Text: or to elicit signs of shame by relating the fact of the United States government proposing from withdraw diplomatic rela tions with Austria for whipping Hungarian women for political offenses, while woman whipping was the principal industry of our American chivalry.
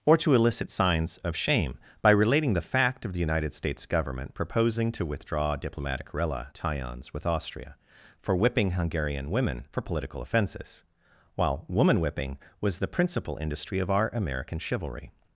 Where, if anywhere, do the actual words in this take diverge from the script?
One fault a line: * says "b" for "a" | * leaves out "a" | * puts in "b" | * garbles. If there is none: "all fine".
* says "to" for "from"